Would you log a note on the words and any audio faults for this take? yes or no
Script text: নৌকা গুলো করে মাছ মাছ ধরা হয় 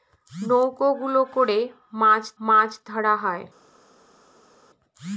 no